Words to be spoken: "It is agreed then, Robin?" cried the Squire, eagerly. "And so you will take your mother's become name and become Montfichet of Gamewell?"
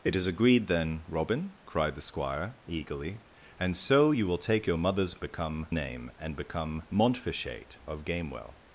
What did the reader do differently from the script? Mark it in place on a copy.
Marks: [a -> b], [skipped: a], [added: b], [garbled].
"It is agreed then, Robin?" cried the Squire, eagerly. "And so you will take your mother's become name and become Montfichet of Gamewell?"